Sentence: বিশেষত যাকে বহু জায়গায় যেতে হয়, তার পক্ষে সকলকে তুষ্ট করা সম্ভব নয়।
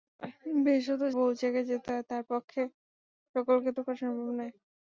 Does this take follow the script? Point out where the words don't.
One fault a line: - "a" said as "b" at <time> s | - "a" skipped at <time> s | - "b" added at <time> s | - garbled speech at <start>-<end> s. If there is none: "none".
- "যাকে" skipped at 1.0 s
- "তুষ্ট" skipped at 3.7 s